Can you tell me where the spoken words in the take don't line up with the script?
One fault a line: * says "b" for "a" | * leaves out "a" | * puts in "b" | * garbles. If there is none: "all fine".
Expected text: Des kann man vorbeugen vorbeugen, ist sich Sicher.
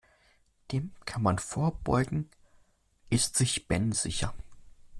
* says "Dem" for "Des"
* leaves out "vorbeugen"
* puts in "Ben"